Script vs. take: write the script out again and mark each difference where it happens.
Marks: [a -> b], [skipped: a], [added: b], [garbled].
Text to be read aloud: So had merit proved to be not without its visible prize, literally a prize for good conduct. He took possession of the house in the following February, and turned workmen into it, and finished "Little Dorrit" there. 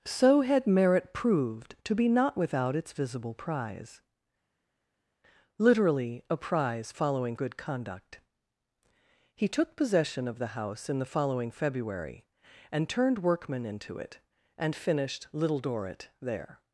So had merit proved to be not without its visible prize, literally a prize [for -> following] good conduct. He took possession of the house in the following February, and turned workmen into it, and finished "Little Dorrit" there.